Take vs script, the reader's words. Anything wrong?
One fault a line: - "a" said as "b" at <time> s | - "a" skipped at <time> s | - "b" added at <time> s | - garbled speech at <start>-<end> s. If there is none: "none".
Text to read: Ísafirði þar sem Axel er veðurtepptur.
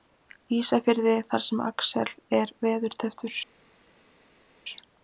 none